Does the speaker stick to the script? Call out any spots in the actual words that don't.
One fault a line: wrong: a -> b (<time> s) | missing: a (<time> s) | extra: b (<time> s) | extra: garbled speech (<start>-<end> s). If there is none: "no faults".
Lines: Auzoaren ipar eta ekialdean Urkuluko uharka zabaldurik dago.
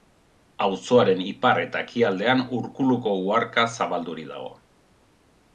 no faults